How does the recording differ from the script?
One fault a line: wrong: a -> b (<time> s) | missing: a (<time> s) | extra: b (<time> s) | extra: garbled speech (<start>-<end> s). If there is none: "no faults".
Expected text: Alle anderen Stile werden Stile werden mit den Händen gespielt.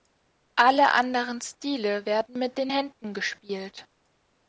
missing: Stile werden (2.4 s)